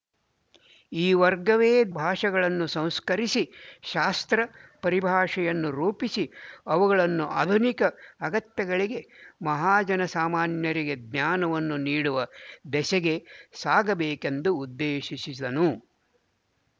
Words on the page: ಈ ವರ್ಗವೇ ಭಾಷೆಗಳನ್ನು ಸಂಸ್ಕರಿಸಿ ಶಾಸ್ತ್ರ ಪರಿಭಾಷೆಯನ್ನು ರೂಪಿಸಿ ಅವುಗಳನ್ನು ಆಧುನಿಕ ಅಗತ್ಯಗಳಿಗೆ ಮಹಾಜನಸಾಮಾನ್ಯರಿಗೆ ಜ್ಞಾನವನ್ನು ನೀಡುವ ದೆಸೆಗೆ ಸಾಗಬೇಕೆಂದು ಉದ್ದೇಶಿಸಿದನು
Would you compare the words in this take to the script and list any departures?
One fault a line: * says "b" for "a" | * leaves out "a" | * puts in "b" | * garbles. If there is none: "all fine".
all fine